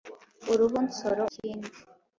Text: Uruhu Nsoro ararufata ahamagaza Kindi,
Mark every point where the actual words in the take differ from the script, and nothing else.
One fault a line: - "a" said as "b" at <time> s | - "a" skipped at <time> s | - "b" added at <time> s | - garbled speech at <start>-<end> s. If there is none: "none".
- "ararufata ahamagaza" skipped at 1.2 s